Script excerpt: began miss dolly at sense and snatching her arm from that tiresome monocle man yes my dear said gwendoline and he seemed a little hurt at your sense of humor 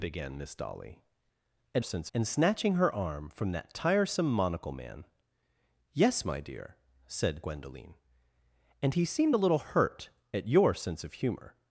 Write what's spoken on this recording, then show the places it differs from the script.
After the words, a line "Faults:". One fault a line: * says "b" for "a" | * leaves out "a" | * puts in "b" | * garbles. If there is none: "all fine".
began miss dolly at sense and snatching her arm from that tiresome monocle man yes my dear said gwendoline and he seemed a little hurt at your sense of humor
Faults:
all fine